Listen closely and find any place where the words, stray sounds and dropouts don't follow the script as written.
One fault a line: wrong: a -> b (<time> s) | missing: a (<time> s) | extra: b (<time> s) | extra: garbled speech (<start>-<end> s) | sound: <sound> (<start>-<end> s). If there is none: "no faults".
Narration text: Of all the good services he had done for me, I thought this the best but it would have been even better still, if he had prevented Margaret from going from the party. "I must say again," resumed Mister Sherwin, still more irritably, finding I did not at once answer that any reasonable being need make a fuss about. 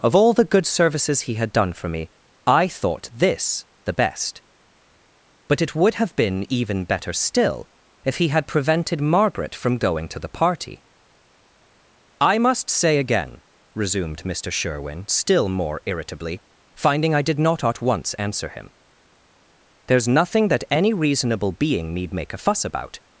wrong: from -> to (10.1 s)
extra: him there's nothing (18.5 s)